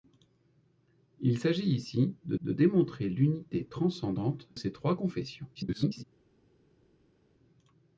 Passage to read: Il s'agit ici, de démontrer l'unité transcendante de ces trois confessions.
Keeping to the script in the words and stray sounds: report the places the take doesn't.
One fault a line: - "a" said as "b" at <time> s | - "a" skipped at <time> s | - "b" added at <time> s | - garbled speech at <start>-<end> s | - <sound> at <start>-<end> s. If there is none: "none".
- "de" added at 2.4 s
- "de" skipped at 4.5 s
- garbled speech at 5.5-6.0 s